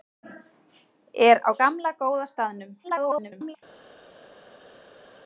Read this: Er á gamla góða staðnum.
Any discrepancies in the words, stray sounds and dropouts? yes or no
yes